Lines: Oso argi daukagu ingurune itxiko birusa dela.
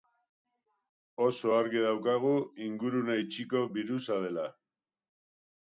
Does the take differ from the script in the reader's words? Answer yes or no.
no